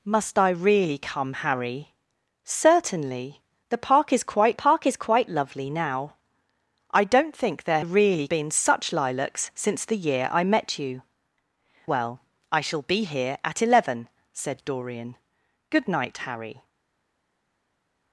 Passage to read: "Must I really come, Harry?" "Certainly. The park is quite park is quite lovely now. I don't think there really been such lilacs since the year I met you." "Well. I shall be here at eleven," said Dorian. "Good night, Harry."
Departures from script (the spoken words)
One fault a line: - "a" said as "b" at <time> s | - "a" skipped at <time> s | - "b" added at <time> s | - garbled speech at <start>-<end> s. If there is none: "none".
none